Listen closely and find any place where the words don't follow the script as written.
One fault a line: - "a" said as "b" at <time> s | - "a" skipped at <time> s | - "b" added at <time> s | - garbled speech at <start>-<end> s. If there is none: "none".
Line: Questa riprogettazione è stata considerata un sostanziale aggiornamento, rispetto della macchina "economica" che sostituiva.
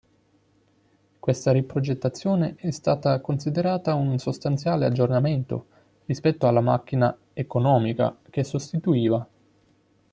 - "della" said as "alla" at 6.5 s